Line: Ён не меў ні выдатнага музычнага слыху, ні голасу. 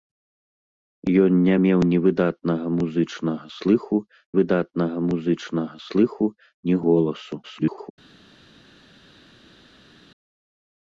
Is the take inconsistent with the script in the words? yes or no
yes